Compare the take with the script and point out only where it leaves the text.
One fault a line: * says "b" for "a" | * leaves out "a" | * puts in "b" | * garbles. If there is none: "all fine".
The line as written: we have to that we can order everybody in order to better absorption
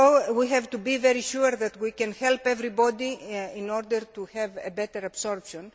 * puts in "be very sure"
* says "help" for "order"
* puts in "have"